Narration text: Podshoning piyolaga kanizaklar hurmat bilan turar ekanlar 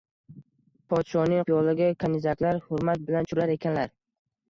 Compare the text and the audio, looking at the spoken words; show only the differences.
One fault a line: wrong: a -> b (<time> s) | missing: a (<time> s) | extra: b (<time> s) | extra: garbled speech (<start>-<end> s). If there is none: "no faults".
no faults